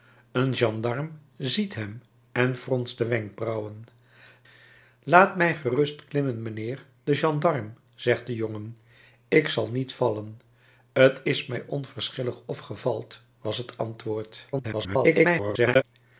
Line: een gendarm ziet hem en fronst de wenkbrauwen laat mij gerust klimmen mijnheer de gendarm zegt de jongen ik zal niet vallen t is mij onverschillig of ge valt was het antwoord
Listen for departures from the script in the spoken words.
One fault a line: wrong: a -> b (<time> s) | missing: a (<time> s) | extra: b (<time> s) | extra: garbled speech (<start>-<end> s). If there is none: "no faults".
extra: garbled speech (14.5-15.8 s)